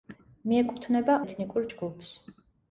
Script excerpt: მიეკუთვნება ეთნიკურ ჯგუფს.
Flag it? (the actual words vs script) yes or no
no